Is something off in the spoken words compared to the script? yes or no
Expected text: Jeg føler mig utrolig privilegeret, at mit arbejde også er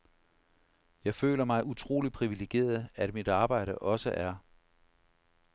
no